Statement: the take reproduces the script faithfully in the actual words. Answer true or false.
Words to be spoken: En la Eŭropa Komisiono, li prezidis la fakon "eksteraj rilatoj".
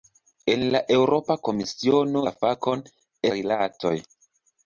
false